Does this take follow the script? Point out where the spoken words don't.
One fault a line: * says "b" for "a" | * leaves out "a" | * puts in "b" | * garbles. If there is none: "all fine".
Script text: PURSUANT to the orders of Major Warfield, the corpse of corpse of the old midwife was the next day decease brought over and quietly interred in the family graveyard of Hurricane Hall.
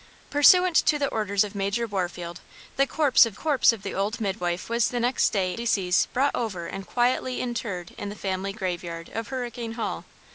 all fine